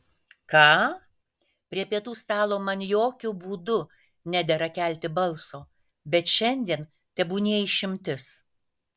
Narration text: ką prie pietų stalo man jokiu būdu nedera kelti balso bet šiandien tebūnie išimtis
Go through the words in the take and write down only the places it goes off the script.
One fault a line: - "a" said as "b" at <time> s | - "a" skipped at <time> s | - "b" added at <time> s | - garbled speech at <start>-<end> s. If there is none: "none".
none